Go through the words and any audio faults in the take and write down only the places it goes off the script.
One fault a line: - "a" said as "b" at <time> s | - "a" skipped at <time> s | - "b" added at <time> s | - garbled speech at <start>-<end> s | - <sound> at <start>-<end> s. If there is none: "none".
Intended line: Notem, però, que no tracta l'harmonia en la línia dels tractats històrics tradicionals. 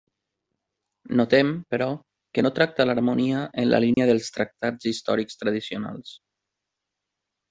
- dropout at 3.9-4.0 s